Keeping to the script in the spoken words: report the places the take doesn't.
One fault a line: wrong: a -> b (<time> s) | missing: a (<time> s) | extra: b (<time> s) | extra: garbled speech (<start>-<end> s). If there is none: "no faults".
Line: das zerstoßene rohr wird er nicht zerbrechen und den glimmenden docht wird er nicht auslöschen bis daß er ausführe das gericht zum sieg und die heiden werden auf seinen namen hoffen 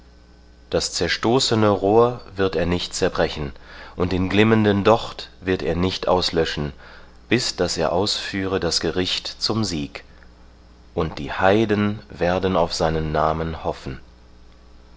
no faults